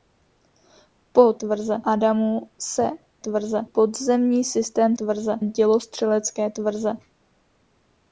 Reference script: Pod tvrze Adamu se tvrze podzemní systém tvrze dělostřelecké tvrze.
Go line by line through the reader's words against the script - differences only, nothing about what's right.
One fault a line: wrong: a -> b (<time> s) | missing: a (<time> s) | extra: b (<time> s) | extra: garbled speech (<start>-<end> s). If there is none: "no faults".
no faults